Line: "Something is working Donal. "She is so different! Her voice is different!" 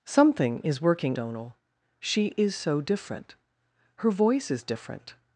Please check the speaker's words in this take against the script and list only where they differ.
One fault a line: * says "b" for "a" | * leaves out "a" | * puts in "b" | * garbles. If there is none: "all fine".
all fine